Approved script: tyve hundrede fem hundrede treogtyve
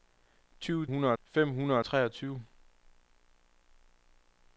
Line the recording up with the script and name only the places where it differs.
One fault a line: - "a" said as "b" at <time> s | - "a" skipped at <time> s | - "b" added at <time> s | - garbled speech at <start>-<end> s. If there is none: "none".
none